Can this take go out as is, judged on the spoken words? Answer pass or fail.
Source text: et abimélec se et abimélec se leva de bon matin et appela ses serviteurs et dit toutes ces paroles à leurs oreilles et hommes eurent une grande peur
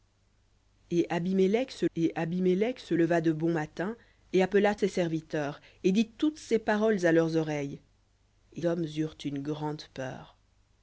pass